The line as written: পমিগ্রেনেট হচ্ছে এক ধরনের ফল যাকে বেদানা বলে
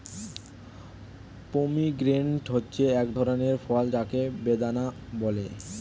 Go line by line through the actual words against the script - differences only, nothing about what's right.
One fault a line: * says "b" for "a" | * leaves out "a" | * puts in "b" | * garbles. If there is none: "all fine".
all fine